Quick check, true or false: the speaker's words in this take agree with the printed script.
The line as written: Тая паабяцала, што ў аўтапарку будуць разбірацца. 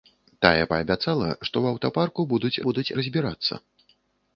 false